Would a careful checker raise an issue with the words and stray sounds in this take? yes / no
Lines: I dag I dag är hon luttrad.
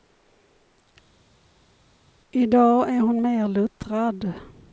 yes